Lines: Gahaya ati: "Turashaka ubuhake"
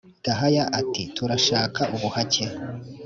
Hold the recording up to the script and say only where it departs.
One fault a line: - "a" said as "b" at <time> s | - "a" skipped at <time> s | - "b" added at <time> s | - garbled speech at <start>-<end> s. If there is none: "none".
none